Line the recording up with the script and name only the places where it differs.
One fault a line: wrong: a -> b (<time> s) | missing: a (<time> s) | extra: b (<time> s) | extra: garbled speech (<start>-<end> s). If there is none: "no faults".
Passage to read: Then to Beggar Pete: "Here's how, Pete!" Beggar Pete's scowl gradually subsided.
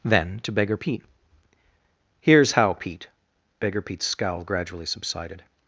no faults